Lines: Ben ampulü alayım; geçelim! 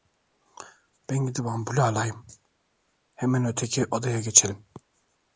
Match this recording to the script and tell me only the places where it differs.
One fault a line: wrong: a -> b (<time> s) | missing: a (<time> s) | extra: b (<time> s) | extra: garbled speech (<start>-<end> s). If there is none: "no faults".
extra: gidip (1.2 s)
extra: hemen öteki odaya (3.1 s)